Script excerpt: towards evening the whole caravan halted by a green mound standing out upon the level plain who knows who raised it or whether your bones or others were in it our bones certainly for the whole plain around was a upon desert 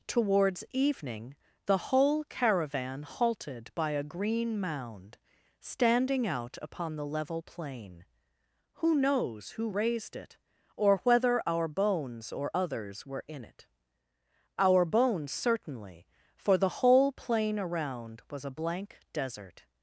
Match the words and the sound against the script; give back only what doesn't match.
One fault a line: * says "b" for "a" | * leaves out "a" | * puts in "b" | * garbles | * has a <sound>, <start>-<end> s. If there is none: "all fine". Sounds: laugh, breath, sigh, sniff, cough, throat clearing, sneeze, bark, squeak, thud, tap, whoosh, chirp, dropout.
* says "our" for "your"
* says "blank" for "upon"